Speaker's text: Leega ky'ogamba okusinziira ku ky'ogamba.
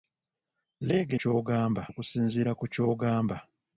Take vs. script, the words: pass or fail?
pass